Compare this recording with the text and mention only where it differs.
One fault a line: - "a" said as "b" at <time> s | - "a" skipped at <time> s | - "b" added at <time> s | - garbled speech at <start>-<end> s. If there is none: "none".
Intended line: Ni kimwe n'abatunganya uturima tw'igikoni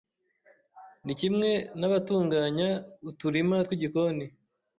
none